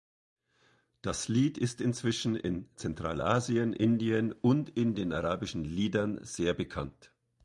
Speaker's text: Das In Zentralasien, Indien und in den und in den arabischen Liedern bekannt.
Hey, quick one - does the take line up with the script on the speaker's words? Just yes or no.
no